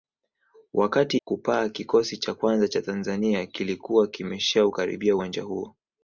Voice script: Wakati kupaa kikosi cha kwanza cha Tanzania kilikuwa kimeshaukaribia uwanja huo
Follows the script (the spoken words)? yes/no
yes